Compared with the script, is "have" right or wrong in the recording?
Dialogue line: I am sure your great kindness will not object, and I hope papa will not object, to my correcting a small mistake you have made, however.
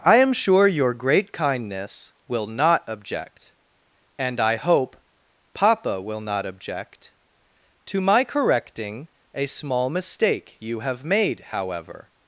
right